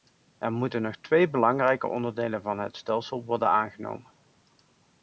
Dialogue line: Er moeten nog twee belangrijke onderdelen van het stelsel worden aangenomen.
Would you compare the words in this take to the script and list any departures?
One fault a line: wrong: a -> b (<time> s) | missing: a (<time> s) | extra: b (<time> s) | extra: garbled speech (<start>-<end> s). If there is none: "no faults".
no faults